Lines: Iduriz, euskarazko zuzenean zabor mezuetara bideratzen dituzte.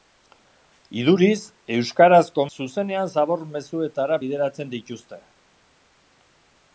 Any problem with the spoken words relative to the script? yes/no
no